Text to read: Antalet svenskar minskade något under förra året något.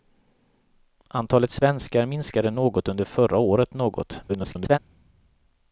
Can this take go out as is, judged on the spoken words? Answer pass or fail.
fail